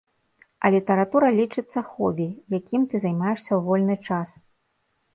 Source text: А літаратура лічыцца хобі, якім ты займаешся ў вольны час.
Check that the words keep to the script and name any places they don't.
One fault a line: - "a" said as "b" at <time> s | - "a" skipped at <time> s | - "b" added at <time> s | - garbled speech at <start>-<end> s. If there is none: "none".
none